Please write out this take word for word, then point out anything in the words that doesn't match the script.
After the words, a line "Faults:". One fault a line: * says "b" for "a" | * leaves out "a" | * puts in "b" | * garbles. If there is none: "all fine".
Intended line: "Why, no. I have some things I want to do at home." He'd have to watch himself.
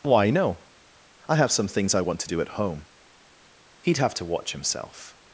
"Why, no. I have some things I want to do at home." He'd have to watch himself.
Faults:
all fine